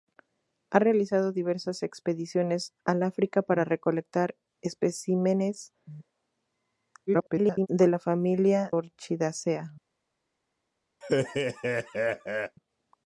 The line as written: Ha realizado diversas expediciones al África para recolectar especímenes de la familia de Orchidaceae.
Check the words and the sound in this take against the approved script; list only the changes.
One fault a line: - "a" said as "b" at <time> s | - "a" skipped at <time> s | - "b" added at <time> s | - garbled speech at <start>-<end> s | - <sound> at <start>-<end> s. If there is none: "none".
- garbled speech at 7.1-7.7 s
- "de" skipped at 8.7 s
- laugh at 11.0-12.6 s